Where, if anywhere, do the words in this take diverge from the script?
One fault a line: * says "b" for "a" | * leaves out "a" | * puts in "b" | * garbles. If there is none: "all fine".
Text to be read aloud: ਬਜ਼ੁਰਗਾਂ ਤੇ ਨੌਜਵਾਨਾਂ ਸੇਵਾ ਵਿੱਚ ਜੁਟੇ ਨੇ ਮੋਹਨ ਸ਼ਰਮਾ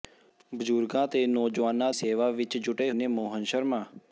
all fine